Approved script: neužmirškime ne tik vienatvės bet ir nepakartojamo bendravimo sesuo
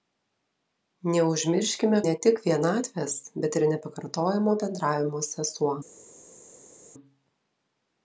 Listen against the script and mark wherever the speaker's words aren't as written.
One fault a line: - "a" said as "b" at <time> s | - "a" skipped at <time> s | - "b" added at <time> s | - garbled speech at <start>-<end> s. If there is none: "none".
none